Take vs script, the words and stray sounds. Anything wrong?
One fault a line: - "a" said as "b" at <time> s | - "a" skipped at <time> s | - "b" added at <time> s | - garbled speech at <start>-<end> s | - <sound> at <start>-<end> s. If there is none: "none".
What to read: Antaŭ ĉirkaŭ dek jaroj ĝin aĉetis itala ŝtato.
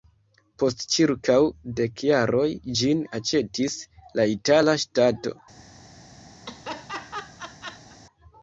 - "Antaŭ" said as "Post" at 0.6 s
- "la" added at 4.2 s
- laugh at 6.4-8.0 s